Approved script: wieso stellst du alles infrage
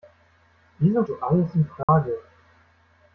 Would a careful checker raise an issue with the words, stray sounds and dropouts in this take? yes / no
yes